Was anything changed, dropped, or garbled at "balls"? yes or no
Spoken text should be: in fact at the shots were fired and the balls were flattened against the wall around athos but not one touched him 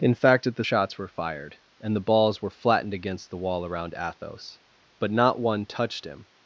no